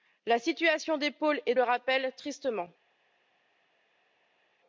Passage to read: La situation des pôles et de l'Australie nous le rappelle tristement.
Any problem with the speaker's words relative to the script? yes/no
yes